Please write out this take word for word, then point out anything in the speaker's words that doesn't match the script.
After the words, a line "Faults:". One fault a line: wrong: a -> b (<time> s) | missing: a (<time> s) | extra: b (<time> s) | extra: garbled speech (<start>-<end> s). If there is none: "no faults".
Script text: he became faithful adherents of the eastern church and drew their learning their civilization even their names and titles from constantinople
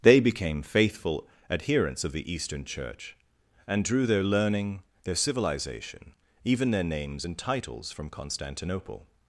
they became faithful adherents of the eastern church and drew their learning their civilization even their names and titles from constantinople
Faults:
wrong: he -> they (0.0 s)